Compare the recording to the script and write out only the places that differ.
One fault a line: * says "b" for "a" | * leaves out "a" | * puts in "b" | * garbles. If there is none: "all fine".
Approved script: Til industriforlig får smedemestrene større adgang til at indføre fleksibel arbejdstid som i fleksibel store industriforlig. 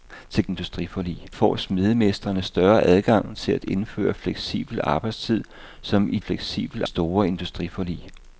all fine